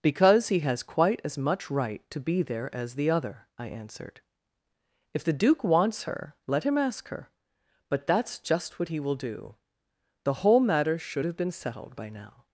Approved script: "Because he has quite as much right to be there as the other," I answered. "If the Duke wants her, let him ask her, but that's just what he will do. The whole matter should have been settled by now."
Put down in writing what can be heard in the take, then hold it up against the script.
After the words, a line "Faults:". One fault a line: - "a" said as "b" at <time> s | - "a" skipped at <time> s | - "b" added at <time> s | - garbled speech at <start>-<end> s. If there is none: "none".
"Because he has quite as much right to be there as the other," I answered. "If the Duke wants her, let him ask her, but that's just what he will do. The whole matter should have been settled by now."
Faults:
none